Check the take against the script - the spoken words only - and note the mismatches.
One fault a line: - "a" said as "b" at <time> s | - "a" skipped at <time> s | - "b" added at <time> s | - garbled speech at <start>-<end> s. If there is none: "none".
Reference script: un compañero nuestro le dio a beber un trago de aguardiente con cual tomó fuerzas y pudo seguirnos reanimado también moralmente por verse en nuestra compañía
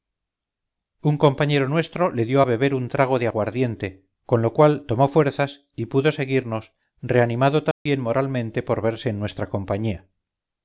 - "lo" added at 4.4 s